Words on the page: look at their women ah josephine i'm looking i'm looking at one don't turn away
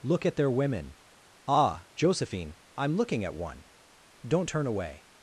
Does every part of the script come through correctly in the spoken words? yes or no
no